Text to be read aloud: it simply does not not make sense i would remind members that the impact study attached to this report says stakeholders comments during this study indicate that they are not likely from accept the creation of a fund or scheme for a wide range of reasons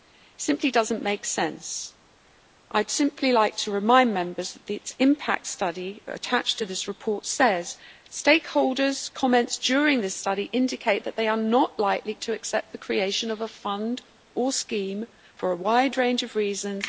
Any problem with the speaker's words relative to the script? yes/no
yes